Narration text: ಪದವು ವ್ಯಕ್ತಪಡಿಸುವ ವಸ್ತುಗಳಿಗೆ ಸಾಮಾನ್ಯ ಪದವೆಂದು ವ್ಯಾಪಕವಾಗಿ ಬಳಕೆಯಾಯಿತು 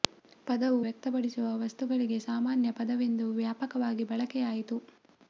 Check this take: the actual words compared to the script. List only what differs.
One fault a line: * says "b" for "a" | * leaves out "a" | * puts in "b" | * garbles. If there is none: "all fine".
all fine